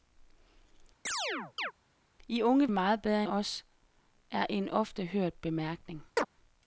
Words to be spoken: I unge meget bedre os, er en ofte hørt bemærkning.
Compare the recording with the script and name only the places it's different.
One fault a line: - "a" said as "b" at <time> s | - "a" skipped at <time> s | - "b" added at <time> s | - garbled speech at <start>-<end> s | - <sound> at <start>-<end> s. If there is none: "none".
- chirp at 1.1-1.7 s
- chirp at 6.2-6.3 s